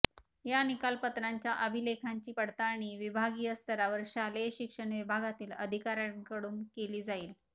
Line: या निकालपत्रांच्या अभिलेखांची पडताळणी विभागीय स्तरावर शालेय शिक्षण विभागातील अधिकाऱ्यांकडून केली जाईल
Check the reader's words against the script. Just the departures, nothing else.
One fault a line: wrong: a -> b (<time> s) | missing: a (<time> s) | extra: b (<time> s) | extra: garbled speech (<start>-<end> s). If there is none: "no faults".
no faults